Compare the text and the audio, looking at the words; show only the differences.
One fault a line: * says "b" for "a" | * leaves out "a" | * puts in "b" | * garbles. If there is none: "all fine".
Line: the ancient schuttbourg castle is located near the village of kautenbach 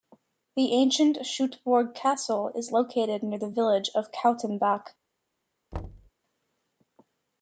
all fine